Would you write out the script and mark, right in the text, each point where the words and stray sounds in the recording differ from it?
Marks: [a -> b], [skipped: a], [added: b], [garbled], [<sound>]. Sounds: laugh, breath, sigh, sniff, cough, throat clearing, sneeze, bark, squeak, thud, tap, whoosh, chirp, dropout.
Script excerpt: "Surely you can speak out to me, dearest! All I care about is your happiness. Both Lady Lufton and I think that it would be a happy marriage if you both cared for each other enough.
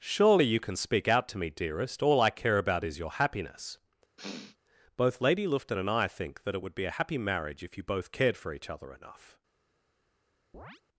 "Surely you can speak out to me, dearest! All I care about is your happiness. [sniff] Both Lady Lufton and I think that it would be a happy marriage if you both cared for each other enough. [chirp]